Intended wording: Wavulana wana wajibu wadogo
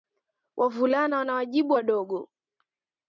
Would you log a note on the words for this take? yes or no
no